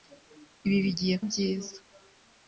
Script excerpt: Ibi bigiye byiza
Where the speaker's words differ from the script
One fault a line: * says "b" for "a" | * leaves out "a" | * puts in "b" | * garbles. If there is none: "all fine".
all fine